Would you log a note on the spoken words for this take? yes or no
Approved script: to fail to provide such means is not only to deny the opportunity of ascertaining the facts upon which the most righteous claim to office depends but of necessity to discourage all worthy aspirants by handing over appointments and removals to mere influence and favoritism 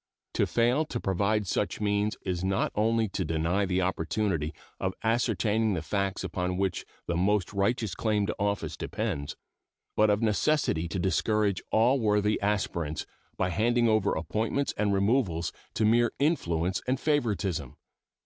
no